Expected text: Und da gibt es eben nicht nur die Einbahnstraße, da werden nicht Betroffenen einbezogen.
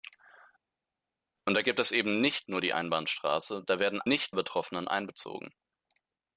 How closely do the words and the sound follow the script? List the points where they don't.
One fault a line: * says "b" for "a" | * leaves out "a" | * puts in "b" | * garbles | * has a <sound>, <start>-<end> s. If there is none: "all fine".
all fine